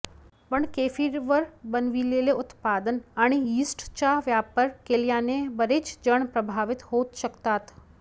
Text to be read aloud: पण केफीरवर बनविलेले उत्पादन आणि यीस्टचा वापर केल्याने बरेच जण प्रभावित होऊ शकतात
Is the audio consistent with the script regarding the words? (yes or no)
yes